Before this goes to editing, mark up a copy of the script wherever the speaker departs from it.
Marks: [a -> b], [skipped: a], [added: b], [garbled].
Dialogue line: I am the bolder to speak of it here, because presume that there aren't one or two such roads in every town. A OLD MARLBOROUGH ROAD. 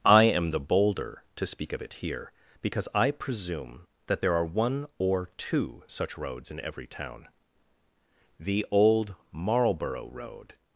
I am the bolder to speak of it here, because [added: I] presume that there [aren't -> are] one or two such roads in every town. [A -> THE] OLD MARLBOROUGH ROAD.